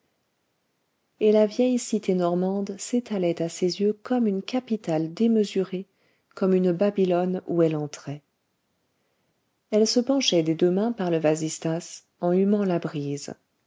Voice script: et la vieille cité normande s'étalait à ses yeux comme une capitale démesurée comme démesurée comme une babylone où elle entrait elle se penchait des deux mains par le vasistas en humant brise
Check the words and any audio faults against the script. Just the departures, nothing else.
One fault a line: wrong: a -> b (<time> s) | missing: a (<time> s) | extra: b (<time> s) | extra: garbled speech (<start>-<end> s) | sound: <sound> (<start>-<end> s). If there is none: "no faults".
missing: démesurée comme (6.5 s)
extra: la (12.6 s)